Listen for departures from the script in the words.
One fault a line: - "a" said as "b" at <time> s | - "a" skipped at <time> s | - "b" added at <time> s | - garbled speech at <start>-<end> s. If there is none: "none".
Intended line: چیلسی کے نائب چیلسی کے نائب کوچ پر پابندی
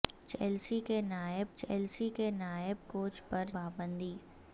none